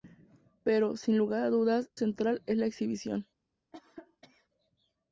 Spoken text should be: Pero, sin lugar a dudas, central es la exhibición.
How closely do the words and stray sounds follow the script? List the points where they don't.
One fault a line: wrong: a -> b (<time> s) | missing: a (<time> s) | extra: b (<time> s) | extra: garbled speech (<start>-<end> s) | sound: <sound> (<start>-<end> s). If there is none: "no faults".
sound: cough (3.7-4.5 s)